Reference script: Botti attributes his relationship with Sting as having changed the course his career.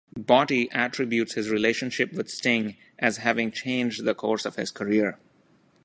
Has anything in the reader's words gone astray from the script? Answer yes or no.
yes